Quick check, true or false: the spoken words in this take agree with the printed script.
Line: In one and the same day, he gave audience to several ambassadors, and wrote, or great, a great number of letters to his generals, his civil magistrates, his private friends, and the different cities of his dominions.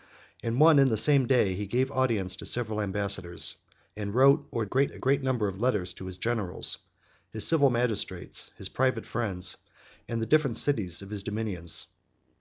true